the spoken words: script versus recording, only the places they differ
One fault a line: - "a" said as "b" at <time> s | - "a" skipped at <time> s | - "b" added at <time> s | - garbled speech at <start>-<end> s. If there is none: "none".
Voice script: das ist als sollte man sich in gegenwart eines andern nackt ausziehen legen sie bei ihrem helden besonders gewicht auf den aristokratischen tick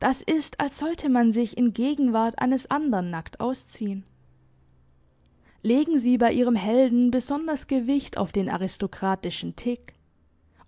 none